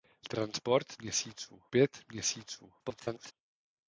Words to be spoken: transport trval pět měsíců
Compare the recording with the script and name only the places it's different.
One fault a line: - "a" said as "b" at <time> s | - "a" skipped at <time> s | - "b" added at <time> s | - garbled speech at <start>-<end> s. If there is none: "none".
- "trval" said as "měsíců" at 1.0 s
- garbled speech at 2.8-3.3 s